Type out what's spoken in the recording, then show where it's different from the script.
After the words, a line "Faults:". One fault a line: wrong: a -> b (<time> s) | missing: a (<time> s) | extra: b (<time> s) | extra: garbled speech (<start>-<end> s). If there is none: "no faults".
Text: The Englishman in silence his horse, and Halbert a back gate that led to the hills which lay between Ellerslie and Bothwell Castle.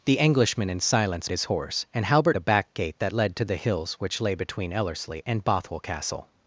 The Englishman in silence his horse, and Halbert a back gate that led to the hills which lay between Ellerslie and Bothwell Castle.
Faults:
no faults